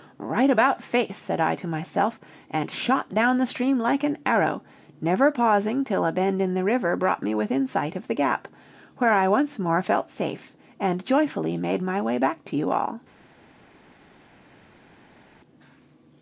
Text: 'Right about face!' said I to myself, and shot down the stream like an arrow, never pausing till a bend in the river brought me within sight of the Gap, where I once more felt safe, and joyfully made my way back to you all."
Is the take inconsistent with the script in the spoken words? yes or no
no